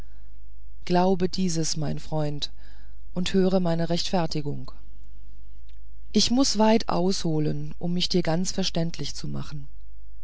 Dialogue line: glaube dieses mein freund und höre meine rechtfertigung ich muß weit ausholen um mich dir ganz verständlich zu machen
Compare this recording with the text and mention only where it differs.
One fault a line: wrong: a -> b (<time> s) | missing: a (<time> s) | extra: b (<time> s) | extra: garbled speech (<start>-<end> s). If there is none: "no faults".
no faults